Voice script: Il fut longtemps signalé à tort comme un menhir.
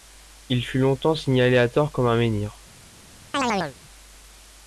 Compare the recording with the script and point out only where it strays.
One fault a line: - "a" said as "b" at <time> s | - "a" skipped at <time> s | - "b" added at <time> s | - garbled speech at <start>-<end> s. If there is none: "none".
none